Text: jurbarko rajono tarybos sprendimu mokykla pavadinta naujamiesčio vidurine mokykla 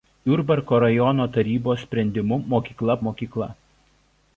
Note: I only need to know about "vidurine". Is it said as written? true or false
false